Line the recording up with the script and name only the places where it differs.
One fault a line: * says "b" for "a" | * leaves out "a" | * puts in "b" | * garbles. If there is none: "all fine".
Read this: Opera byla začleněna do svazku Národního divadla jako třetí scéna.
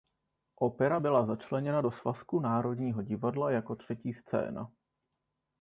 all fine